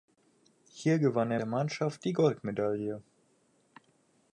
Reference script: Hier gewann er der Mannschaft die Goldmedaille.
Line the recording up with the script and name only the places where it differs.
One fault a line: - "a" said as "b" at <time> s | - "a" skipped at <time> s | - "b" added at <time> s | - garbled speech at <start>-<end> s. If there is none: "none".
none